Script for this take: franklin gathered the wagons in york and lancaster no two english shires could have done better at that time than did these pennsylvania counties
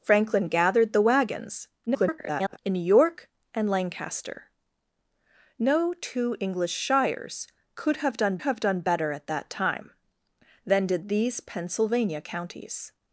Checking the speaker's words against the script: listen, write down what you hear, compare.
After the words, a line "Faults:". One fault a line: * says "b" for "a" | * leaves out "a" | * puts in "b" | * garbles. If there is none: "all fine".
franklin gathered the wagons [garbled] in york and lancaster no two english shires could have done have done better at that time than did these pennsylvania counties
Faults:
* garbles
* puts in "have done"